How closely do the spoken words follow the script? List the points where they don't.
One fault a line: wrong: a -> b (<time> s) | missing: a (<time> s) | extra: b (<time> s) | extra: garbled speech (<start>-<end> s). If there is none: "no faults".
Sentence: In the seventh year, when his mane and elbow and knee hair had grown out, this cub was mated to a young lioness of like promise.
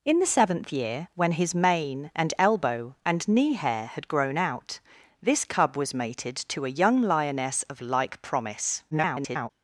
extra: garbled speech (8.9-9.5 s)